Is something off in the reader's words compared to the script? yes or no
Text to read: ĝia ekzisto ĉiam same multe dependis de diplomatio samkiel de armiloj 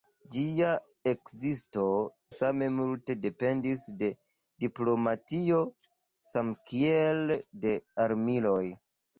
yes